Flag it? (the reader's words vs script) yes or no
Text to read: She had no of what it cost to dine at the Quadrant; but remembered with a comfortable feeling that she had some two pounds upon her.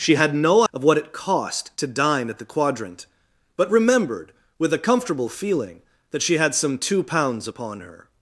no